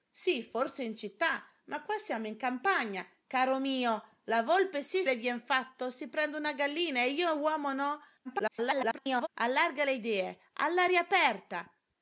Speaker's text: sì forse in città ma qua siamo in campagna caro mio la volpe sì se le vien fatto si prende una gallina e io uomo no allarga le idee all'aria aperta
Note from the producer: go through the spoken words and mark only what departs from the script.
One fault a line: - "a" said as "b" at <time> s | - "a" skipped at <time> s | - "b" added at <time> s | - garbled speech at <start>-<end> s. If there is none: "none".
- "se" skipped at 5.0 s
- garbled speech at 8.2-9.3 s